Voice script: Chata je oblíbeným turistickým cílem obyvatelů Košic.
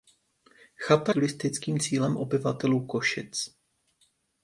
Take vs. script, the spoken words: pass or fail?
fail